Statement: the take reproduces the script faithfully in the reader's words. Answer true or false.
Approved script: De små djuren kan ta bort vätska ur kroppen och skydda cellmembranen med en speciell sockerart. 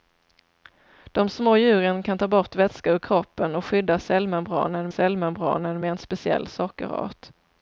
false